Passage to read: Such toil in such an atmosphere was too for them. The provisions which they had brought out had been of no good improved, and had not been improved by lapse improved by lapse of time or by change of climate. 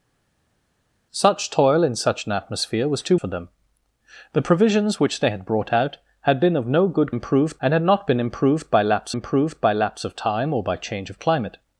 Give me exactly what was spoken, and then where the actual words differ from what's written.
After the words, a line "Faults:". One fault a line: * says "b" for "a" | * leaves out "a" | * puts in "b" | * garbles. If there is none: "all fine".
Such toil in such an atmosphere was too for them. The provisions which they had brought out had been of no good improved, and had not been improved by lapse improved by lapse of time or by change of climate.
Faults:
all fine